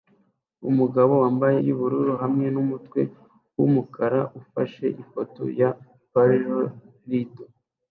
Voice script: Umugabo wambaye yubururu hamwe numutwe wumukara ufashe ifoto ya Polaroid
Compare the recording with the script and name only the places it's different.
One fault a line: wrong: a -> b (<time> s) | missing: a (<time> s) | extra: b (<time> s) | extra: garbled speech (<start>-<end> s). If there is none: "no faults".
no faults